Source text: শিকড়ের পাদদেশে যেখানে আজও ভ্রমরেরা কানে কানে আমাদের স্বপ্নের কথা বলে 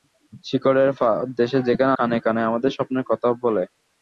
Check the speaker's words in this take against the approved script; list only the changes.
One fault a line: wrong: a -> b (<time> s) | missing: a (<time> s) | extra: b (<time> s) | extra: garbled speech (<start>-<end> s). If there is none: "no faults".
missing: আজও ভ্রমরেরা (1.9 s)